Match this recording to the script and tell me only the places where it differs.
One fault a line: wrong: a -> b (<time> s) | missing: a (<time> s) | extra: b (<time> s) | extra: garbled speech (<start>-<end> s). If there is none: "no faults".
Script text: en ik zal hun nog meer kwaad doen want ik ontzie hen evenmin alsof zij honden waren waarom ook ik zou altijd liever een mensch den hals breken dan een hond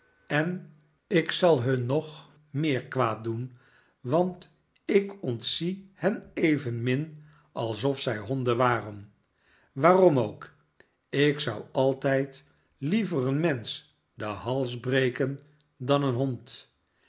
no faults